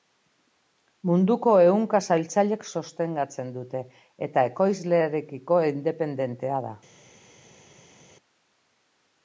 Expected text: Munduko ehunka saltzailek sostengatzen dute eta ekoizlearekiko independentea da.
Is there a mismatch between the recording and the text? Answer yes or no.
no